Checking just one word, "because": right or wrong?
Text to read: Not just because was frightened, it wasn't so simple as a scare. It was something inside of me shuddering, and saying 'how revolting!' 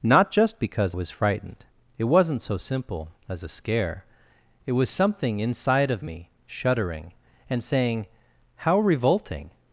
right